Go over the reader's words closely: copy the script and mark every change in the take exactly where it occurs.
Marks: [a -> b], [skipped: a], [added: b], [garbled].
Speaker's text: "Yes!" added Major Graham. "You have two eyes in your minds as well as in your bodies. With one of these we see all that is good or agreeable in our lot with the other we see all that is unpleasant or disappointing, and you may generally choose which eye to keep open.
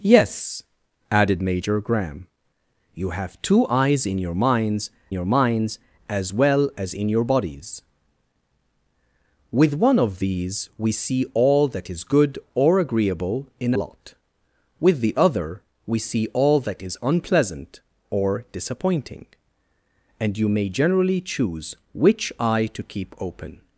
"Yes!" added Major Graham. "You have two eyes in your minds [added: your minds] as well as in your bodies. With one of these we see all that is good or agreeable in [skipped: our] lot with the other we see all that is unpleasant or disappointing, and you may generally choose which eye to keep open.